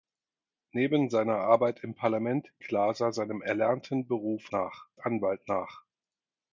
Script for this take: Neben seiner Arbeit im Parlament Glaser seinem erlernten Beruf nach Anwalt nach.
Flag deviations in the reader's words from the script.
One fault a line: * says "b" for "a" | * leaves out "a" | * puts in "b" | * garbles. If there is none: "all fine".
all fine